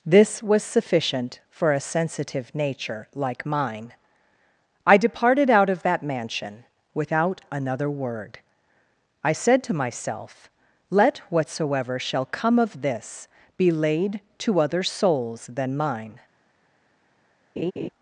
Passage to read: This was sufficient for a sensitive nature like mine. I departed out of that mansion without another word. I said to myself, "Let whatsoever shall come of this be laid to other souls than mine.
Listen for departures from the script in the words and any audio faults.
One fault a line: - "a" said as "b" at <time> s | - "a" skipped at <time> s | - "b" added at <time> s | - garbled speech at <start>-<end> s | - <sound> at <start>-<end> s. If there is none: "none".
- laugh at 17.6-17.9 s